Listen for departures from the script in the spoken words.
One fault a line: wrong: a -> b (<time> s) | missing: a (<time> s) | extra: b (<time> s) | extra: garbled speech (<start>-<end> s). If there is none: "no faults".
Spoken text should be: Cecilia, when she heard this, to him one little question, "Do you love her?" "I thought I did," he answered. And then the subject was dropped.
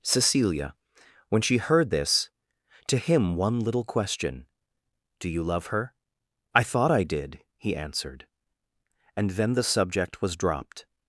no faults